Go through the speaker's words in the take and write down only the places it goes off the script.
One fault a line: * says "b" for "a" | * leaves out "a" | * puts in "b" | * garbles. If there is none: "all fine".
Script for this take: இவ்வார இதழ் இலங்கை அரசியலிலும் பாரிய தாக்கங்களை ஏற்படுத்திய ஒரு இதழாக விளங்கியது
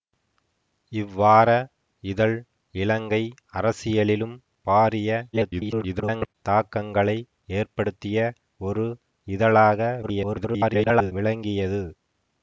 * garbles
* garbles